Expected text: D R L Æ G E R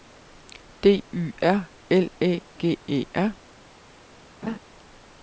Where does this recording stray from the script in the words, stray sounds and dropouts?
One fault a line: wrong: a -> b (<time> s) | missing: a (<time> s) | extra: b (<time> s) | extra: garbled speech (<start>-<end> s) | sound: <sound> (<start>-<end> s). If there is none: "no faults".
extra: Y (1.1 s)
sound: laugh (4.4-4.6 s)